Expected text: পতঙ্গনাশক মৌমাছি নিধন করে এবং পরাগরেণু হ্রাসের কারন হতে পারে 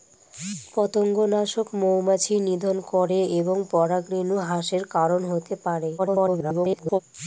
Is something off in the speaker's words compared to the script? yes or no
yes